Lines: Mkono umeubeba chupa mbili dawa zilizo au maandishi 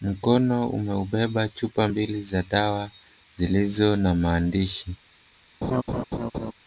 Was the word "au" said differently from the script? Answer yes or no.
yes